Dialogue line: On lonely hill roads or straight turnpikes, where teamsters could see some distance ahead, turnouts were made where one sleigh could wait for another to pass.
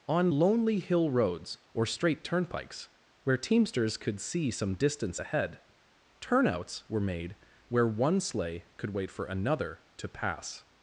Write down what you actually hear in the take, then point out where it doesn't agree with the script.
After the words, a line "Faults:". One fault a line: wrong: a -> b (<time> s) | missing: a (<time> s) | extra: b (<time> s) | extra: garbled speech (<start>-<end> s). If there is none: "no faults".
On lonely hill roads or straight turnpikes, where teamsters could see some distance ahead, turnouts were made where one sleigh could wait for another to pass.
Faults:
no faults